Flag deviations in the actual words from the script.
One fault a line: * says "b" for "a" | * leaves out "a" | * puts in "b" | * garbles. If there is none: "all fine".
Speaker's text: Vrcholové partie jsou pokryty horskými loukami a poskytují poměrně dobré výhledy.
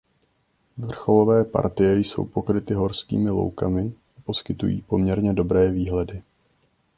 all fine